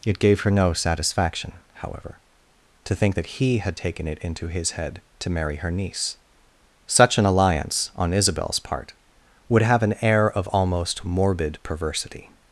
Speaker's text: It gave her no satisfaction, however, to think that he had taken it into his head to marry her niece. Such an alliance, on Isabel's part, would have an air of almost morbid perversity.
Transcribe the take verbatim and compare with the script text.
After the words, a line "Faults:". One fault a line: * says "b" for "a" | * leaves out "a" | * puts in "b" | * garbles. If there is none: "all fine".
It gave her no satisfaction, however, to think that he had taken it into his head to marry her niece. Such an alliance, on Isabel's part, would have an air of almost morbid perversity.
Faults:
all fine